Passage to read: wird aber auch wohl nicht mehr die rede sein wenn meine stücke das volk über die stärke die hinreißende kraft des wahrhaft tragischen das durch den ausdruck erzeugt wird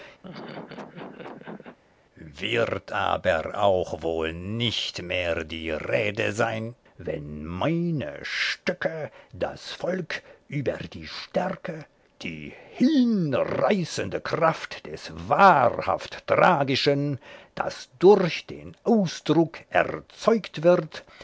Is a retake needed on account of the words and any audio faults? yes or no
yes